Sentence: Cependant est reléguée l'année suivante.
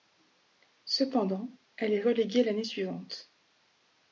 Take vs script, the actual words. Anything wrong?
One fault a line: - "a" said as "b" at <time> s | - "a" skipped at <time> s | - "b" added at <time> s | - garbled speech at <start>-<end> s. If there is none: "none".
- "elle" added at 1.8 s